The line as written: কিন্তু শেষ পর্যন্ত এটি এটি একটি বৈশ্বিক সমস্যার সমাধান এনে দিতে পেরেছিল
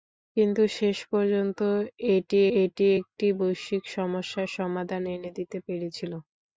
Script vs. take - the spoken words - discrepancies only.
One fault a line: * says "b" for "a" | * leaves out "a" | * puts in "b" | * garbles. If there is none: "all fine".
all fine